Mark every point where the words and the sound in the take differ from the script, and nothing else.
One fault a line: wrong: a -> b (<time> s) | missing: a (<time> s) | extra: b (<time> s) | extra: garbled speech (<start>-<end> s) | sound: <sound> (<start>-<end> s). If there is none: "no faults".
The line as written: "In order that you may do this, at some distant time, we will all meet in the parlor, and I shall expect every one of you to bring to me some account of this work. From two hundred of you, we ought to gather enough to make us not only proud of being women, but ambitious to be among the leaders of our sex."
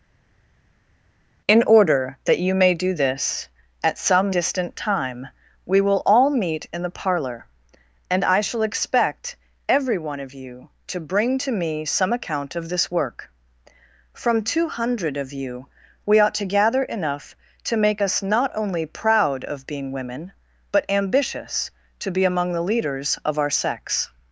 no faults